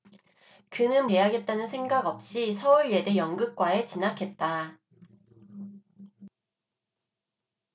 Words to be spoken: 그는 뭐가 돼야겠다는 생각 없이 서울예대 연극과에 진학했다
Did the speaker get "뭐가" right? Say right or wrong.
wrong